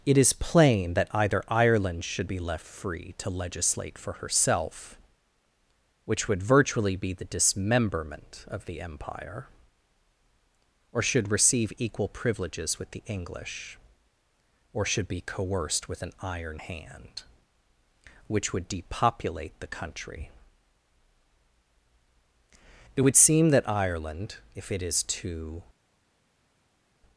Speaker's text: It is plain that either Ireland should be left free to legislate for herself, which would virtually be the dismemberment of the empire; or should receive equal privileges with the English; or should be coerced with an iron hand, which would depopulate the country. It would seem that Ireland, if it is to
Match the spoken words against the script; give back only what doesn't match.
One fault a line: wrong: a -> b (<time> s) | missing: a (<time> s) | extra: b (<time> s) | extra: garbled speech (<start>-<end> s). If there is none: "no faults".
no faults